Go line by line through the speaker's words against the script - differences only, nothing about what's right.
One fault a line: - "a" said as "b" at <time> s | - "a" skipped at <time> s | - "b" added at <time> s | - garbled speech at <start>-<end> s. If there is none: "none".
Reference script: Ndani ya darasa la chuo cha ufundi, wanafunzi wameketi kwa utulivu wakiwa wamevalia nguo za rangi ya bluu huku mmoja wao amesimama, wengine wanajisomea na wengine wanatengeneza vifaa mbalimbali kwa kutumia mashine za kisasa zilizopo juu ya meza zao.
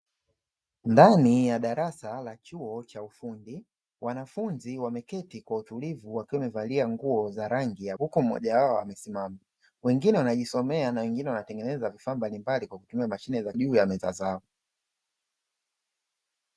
- "bluu" skipped at 8.0 s
- "kisasa zilizopo" skipped at 13.5 s